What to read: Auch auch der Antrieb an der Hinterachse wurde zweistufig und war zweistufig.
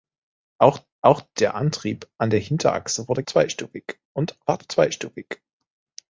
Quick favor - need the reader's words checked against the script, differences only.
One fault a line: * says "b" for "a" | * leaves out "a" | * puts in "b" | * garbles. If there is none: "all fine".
all fine